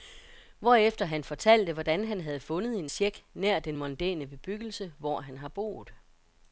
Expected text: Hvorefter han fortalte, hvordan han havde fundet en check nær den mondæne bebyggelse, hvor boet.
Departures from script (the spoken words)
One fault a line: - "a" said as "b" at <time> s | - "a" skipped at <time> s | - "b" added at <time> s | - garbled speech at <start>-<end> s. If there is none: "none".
- "han har" added at 5.2 s